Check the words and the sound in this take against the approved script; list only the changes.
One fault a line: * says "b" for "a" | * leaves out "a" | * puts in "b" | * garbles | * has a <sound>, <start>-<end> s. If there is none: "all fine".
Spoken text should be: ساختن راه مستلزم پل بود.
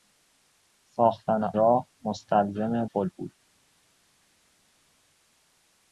all fine